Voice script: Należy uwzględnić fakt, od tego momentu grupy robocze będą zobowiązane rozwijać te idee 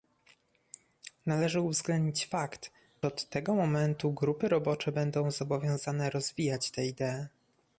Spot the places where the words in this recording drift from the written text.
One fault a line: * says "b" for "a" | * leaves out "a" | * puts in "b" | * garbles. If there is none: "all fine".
all fine